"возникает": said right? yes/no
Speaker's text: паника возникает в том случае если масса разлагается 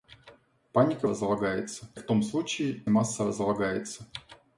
no